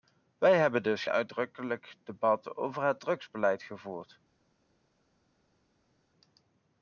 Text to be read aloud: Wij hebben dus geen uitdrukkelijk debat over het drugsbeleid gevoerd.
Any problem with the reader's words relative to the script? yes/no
yes